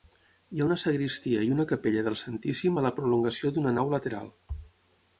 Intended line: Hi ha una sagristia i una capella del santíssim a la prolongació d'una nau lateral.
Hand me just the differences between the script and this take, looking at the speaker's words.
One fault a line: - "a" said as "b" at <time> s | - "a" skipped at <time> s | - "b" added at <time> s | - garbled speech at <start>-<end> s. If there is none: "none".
none